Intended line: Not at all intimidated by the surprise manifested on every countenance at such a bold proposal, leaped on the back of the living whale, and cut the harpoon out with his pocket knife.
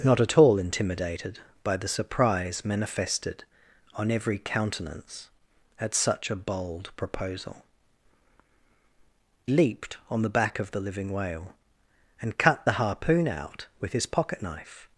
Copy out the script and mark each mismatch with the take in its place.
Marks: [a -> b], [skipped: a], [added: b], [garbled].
Not at all intimidated by the surprise manifested on every countenance at such a bold proposal, leaped on the back of the living whale, and cut the harpoon out with his pocket knife.